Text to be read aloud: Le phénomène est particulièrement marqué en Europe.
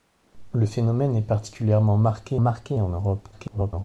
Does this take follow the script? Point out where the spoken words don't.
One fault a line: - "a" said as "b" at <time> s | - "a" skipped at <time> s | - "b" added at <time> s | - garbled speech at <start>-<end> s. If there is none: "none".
- "marqué" added at 2.4 s
- garbled speech at 3.3-3.8 s